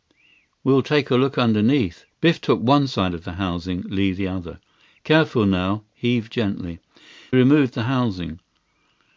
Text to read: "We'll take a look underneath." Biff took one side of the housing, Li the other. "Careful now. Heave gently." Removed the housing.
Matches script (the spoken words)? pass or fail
pass